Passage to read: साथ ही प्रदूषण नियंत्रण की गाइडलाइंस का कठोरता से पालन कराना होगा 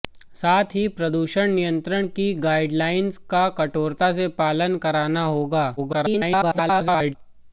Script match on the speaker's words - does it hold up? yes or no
no